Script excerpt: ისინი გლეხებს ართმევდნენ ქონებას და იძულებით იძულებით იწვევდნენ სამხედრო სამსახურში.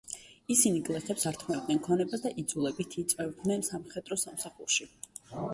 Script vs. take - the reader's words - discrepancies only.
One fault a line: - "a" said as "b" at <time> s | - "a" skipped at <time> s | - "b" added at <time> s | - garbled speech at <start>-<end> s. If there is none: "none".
- "იძულებით" skipped at 3.0 s